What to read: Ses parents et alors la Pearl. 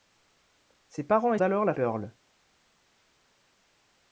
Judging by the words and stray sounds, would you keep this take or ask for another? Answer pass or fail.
pass